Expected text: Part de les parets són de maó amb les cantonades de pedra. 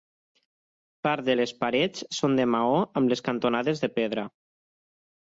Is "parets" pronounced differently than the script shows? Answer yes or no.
no